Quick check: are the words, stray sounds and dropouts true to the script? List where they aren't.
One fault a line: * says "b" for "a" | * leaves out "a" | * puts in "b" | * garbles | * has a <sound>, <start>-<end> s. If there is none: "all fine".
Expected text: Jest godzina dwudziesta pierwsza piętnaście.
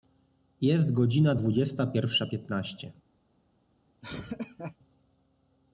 * has a laugh, 4.0-4.8 s